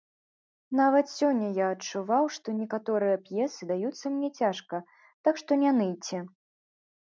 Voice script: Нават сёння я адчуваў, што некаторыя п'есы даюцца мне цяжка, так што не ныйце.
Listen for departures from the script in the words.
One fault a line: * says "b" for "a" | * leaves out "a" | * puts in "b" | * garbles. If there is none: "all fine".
all fine